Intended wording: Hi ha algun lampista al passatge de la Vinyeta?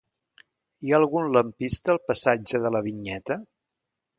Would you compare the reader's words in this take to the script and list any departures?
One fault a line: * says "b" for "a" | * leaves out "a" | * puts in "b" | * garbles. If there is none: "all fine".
all fine